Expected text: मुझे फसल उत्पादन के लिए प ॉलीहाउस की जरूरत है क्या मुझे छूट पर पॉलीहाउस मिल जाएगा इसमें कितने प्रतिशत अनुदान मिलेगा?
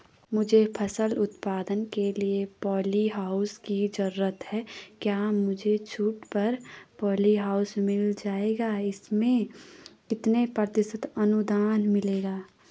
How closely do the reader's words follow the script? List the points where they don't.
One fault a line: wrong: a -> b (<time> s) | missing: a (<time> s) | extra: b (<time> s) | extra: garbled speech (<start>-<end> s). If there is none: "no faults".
no faults